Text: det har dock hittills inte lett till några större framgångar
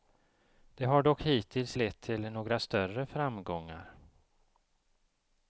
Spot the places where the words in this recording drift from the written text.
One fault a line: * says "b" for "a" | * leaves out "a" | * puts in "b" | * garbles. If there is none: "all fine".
* leaves out "inte"